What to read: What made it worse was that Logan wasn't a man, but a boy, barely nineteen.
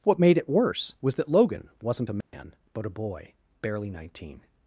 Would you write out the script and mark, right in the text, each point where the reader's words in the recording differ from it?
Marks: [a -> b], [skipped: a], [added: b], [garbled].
What made it worse was that Logan wasn't a man, but a boy, barely nineteen.